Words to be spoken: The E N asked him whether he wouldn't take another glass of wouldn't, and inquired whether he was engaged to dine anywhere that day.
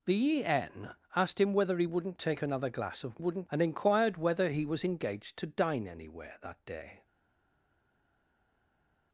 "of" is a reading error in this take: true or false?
false